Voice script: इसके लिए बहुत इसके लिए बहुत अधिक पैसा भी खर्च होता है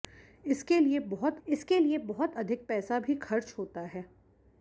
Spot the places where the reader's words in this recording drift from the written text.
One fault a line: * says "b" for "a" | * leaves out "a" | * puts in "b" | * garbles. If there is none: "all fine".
all fine